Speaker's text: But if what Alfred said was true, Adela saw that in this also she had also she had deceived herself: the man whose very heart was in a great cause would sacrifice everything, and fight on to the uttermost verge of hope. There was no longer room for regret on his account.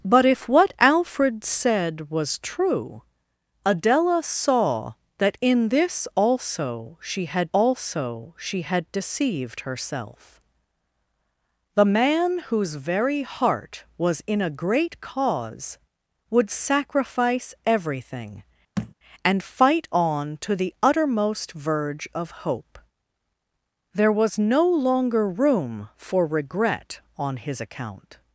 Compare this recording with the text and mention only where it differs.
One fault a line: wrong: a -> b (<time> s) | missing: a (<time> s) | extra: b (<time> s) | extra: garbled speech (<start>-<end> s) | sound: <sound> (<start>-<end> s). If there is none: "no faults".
sound: thud (18.8-18.9 s)